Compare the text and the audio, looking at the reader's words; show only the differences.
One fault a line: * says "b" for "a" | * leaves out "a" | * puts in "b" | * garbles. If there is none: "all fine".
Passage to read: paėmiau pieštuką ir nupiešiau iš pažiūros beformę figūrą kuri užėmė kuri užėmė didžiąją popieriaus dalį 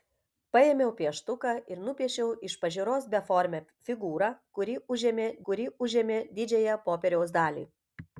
all fine